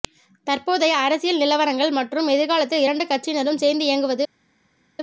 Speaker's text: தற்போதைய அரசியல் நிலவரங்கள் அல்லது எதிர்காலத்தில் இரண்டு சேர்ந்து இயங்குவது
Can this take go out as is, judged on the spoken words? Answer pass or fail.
fail